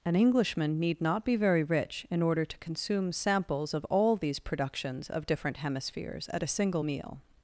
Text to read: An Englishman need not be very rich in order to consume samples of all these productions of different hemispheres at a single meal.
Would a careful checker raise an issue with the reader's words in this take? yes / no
no